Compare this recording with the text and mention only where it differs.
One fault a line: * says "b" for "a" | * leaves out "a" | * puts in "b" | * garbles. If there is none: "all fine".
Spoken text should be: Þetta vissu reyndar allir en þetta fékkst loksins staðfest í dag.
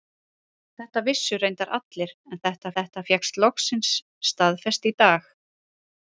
* puts in "þetta"